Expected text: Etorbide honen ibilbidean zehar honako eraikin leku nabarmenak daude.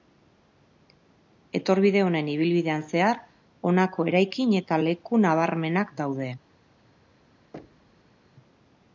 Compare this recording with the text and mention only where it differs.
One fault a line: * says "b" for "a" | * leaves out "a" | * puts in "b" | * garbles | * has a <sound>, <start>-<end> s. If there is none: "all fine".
* puts in "eta"
* has a thud, 7.5-8.2 s